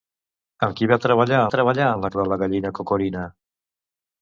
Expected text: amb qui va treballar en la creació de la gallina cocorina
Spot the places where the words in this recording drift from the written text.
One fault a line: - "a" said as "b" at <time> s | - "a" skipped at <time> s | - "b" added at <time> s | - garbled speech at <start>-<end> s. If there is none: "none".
- "treballar" added at 1.5 s
- "creació" skipped at 2.1 s